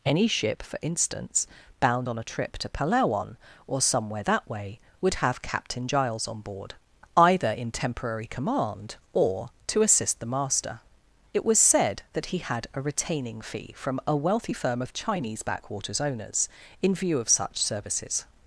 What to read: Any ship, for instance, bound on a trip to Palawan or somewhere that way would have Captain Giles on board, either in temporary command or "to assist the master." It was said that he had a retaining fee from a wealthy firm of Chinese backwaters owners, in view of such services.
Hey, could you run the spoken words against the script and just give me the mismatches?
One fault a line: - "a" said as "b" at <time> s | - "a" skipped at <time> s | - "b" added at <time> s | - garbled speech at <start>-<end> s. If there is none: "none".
none